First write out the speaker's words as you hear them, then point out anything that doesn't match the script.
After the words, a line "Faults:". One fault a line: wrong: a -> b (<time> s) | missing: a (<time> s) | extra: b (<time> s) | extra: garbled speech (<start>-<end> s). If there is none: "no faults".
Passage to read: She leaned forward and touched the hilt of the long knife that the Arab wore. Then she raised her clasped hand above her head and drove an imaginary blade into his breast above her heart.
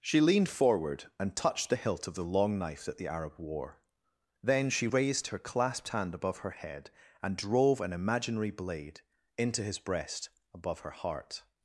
She leaned forward and touched the hilt of the long knife that the Arab wore. Then she raised her clasped hand above her head and drove an imaginary blade into his breast above her heart.
Faults:
no faults